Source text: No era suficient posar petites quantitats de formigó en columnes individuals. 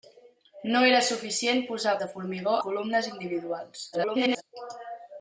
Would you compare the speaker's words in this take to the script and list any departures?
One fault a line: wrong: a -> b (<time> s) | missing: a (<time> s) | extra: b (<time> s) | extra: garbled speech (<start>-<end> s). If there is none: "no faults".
missing: petites quantitats (1.9 s)
missing: en (2.6 s)
extra: garbled speech (3.9-4.4 s)